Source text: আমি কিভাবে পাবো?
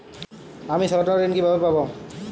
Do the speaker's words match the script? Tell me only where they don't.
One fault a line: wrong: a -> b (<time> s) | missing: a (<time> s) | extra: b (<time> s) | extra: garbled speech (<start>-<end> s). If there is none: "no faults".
extra: স্বর্ণঋণ (0.8 s)